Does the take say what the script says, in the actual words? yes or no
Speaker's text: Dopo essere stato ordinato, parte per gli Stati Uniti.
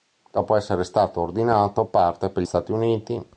no